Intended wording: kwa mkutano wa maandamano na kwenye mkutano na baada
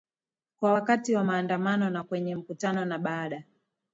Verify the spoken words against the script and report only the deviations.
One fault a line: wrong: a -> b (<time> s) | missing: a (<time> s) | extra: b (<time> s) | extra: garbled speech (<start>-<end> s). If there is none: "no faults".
wrong: mkutano -> wakati (0.7 s)